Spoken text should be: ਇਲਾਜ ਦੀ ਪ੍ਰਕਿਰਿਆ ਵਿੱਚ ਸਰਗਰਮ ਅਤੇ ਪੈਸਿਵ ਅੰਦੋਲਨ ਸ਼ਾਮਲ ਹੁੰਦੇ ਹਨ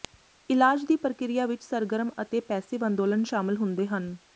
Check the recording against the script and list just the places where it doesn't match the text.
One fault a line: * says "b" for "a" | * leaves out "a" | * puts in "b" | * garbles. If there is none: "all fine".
all fine